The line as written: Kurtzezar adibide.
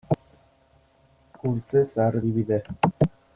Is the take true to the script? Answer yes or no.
yes